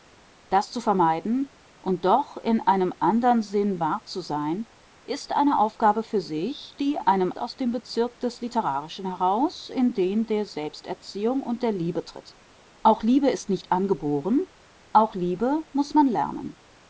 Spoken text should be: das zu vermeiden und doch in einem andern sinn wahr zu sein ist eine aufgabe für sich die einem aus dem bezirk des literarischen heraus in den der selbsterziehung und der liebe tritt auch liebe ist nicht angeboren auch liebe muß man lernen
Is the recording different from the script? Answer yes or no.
no